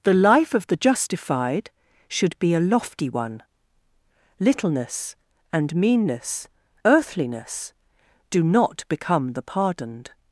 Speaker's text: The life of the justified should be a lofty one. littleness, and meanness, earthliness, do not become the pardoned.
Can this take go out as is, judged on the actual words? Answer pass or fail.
pass